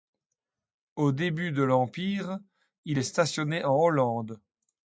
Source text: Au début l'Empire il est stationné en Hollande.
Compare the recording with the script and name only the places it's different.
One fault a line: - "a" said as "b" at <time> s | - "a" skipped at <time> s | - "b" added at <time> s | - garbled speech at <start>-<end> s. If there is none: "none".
- "de" added at 1.5 s